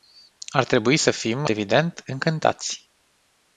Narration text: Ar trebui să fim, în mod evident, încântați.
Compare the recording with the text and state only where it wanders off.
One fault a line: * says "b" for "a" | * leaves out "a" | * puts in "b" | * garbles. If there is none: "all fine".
* leaves out "în mod"